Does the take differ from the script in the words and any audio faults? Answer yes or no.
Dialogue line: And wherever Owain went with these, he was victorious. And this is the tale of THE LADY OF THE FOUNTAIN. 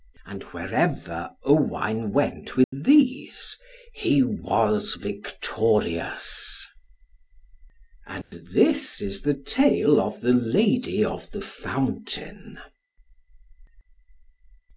yes